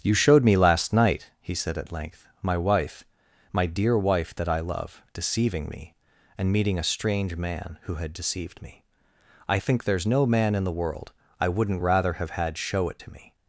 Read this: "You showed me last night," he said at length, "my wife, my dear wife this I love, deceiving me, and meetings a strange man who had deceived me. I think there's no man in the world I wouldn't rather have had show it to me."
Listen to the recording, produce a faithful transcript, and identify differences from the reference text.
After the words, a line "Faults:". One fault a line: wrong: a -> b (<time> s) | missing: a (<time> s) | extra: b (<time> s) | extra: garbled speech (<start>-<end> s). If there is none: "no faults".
"You showed me last night," he said at length, "my wife, my dear wife that I love, deceiving me, and meeting a strange man who had deceived me. I think there's no man in the world I wouldn't rather have had show it to me."
Faults:
wrong: this -> that (4.3 s)
wrong: meetings -> meeting (6.5 s)